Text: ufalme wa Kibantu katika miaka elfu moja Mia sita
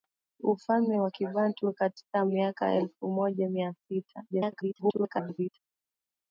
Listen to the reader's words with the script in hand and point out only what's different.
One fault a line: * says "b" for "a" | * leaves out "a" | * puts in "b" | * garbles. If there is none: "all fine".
* garbles